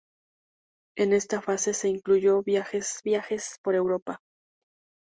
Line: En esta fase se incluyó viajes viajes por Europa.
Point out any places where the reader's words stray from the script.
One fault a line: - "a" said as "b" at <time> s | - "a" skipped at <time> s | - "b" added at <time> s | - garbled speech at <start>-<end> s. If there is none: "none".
none